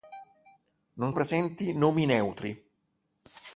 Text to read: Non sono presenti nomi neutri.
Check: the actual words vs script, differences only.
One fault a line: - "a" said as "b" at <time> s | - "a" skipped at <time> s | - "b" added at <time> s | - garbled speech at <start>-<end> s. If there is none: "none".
- "sono" skipped at 1.1 s